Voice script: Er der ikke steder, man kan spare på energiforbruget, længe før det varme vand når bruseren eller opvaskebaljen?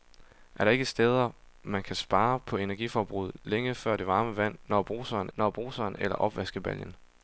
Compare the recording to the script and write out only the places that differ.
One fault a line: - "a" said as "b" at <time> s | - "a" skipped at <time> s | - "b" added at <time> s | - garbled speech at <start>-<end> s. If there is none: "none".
- "når bruseren" added at 5.4 s